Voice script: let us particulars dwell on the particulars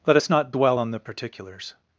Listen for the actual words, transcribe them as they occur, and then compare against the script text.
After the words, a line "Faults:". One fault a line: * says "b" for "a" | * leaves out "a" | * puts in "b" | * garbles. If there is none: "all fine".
let us not dwell on the particulars
Faults:
* says "not" for "particulars"